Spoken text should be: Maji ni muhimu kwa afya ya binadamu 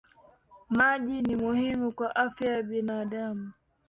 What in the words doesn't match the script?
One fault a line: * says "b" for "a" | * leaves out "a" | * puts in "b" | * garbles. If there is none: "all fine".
all fine